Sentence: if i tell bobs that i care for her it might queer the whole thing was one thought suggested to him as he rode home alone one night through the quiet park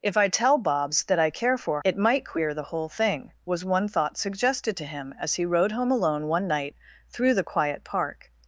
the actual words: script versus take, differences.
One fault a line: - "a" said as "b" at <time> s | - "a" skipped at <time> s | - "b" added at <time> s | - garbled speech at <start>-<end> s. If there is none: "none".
- "her" skipped at 1.8 s